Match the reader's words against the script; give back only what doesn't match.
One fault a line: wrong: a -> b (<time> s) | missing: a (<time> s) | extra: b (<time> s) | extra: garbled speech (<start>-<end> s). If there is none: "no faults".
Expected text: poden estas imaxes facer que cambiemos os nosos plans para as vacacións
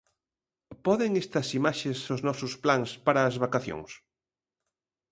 missing: facer que cambiemos (2.0 s)